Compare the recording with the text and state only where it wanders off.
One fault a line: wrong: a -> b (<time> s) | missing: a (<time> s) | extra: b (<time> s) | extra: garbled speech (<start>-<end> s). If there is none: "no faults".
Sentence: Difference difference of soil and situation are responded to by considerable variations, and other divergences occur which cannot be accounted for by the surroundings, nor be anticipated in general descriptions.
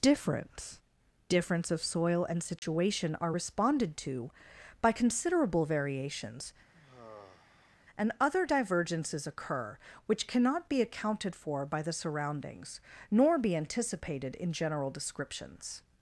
no faults